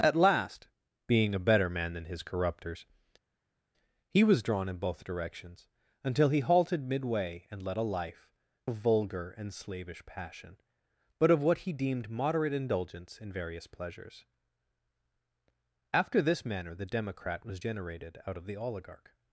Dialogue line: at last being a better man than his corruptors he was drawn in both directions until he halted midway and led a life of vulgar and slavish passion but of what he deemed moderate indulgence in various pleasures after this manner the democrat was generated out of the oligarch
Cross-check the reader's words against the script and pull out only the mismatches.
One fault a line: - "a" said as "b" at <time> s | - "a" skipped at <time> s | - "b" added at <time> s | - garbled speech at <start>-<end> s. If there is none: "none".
none